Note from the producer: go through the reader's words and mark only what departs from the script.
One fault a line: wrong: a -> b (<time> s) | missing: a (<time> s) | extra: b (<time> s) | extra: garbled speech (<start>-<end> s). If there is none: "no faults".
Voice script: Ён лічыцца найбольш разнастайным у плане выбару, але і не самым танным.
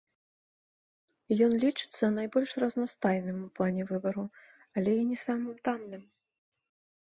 no faults